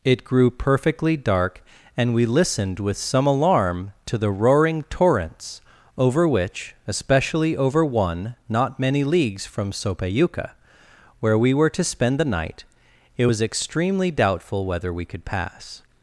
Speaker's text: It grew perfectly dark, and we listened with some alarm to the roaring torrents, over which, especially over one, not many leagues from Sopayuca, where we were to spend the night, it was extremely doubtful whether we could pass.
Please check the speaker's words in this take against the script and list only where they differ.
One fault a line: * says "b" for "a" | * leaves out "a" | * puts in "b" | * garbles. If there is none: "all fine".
all fine